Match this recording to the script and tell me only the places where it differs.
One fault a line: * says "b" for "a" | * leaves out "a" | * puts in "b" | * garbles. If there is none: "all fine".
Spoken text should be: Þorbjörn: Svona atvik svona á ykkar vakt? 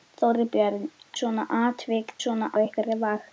all fine